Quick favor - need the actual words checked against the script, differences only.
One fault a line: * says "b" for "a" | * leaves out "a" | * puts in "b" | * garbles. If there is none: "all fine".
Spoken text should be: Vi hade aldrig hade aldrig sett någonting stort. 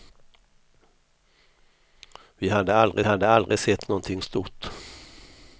all fine